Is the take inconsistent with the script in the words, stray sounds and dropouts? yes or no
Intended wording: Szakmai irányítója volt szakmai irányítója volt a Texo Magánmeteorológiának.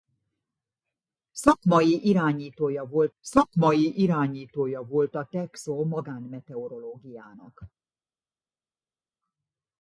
no